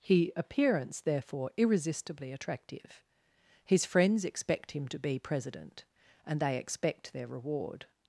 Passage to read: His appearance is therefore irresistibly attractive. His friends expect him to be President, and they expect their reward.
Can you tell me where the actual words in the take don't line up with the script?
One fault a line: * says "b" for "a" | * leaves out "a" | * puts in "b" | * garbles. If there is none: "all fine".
* leaves out "is"